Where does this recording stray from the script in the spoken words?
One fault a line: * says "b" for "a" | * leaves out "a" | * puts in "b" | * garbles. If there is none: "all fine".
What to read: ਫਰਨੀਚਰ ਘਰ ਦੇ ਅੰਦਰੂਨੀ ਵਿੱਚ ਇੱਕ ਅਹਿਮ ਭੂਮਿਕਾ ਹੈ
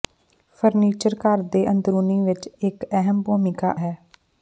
all fine